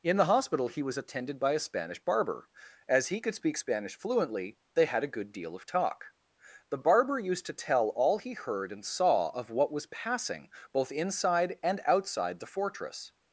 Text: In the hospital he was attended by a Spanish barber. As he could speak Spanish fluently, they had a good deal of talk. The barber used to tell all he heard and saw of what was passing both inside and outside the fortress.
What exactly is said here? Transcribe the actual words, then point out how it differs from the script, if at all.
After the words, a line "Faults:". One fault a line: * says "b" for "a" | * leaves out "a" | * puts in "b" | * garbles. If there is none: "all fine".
In the hospital he was attended by a Spanish barber. As he could speak Spanish fluently, they had a good deal of talk. The barber used to tell all he heard and saw of what was passing both inside and outside the fortress.
Faults:
all fine